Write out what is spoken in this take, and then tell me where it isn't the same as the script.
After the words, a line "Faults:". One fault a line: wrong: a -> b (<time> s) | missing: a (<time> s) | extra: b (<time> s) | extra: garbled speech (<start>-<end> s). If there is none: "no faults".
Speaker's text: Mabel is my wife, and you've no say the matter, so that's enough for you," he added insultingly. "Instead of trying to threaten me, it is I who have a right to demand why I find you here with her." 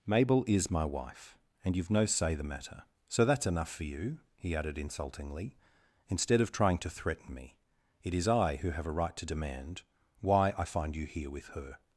Mabel is my wife, and you've no say the matter, so that's enough for you," he added insultingly. "Instead of trying to threaten me, it is I who have a right to demand why I find you here with her."
Faults:
no faults